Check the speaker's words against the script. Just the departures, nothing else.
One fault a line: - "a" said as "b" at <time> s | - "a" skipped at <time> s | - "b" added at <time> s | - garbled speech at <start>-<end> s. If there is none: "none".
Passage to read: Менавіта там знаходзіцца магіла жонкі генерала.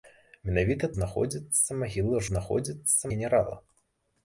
- "там" skipped at 0.9 s
- "жонкі" said as "знаходзіцца" at 2.3 s